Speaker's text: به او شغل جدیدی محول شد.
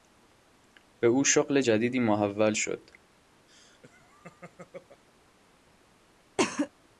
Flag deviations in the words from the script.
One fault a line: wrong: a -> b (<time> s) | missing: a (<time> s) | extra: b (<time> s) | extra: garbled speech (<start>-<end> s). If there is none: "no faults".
no faults